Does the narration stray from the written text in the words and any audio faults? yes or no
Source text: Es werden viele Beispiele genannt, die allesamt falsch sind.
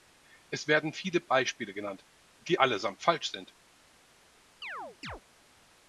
yes